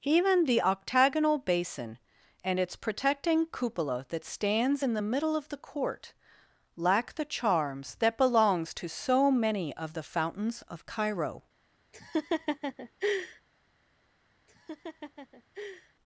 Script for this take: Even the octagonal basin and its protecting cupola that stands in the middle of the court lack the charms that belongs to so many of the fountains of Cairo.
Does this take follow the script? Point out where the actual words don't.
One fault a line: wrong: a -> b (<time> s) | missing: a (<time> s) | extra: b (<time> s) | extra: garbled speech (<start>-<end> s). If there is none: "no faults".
no faults